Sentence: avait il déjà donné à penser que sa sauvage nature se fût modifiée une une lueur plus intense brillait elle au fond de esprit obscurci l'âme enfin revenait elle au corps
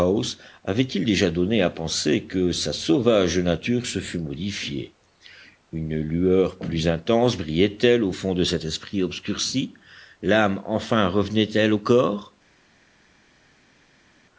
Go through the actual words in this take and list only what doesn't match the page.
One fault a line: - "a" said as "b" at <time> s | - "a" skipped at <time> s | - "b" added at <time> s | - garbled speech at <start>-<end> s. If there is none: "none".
- "une" skipped at 6.0 s
- "cet" added at 8.4 s